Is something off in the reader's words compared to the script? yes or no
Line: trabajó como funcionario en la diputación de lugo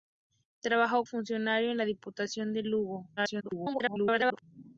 yes